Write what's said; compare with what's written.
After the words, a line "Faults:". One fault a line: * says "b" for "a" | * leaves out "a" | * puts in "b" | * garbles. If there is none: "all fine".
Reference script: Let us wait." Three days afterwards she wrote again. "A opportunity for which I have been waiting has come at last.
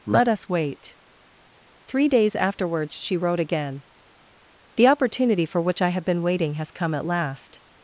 Let us wait." Three days afterwards she wrote again. "The opportunity for which I have been waiting has come at last.
Faults:
* says "The" for "A"